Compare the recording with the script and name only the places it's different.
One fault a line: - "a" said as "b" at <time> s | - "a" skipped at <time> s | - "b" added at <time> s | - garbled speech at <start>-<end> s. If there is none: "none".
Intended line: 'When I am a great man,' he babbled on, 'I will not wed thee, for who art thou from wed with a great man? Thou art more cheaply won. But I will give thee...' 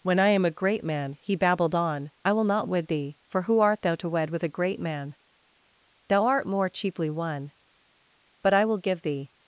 - "from" said as "to" at 4.0 s